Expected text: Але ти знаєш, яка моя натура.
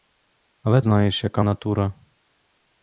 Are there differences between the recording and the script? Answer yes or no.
yes